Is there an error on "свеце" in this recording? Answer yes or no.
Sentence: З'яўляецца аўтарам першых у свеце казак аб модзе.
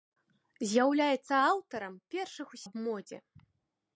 yes